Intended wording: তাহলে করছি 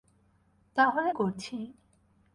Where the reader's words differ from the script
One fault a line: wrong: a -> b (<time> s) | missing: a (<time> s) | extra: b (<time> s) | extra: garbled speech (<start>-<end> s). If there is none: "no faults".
no faults